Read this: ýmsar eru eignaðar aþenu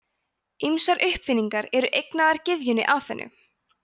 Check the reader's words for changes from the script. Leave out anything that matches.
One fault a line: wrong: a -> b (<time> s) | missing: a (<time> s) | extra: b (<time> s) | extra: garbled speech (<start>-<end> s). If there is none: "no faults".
extra: uppfinningar (1.1 s)
extra: gyðjunni (2.5 s)